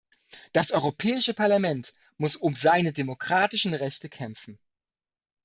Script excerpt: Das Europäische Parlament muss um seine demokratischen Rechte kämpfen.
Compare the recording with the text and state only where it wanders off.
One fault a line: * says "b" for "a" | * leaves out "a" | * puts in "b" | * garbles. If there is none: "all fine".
all fine